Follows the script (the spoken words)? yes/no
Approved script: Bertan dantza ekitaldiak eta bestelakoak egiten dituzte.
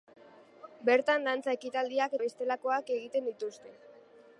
no